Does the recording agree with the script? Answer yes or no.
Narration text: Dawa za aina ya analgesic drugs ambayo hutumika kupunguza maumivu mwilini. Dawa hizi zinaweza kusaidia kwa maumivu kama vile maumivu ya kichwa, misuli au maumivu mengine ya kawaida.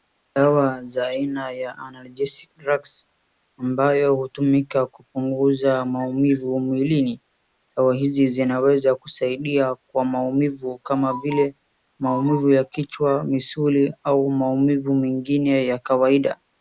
yes